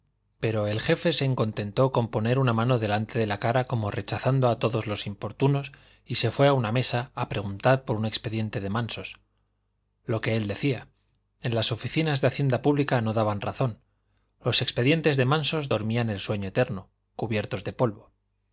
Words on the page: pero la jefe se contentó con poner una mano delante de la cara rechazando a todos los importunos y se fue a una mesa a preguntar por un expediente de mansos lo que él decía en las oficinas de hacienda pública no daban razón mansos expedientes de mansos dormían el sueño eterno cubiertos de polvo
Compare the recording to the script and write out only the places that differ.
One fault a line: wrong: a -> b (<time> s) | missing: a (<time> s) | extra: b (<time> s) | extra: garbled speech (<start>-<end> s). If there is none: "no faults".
wrong: la -> el (0.7 s)
extra: como (3.6 s)
wrong: mansos -> los (14.4 s)